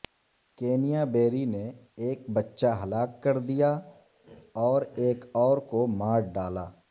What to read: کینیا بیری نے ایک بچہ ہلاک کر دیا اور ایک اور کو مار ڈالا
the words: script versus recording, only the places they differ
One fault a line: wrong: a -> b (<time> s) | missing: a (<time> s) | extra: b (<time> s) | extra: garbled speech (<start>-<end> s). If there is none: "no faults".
no faults